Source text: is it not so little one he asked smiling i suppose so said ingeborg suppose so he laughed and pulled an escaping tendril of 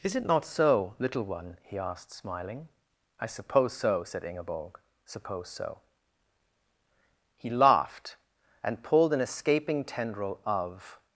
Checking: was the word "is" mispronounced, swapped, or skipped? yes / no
no